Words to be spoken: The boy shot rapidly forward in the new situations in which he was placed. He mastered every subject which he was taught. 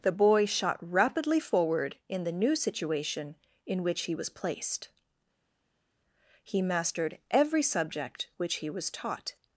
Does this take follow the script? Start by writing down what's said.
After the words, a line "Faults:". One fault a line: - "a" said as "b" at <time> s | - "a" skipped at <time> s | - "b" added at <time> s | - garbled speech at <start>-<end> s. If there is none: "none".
The boy shot rapidly forward in the new situation in which he was placed. He mastered every subject which he was taught.
Faults:
- "situations" said as "situation" at 2.6 s